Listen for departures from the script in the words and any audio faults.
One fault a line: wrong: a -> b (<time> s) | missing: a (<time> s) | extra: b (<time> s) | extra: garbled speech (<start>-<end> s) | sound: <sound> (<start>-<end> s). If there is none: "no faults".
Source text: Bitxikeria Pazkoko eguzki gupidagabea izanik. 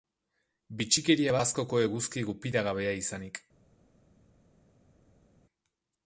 no faults